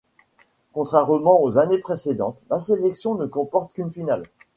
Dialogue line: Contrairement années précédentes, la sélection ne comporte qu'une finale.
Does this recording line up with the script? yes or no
no